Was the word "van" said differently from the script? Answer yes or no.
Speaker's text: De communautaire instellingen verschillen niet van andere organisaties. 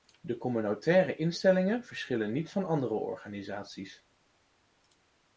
no